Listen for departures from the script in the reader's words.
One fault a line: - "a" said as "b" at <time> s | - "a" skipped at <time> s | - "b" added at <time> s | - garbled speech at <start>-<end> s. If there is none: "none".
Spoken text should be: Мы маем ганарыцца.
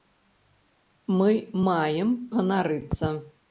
none